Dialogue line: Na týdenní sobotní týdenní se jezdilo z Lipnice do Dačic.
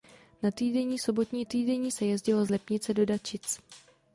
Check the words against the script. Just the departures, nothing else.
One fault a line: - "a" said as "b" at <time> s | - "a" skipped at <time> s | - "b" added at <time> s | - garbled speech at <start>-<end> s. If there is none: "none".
none